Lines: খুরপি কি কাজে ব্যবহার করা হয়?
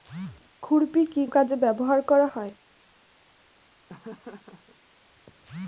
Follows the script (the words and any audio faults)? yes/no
no